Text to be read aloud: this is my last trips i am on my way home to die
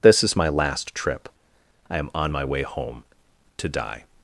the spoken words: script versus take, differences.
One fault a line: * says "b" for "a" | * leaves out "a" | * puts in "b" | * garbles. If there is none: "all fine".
* says "trip" for "trips"